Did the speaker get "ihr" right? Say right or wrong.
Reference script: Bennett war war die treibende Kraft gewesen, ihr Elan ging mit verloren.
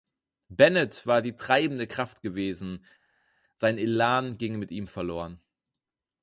wrong